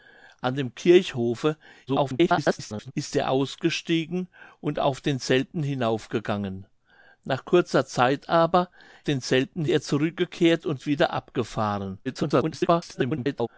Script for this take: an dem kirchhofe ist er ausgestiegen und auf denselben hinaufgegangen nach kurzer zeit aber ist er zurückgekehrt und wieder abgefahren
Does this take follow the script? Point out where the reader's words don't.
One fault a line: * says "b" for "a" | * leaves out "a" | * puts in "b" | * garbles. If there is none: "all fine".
* garbles
* says "denselben" for "ist"
* garbles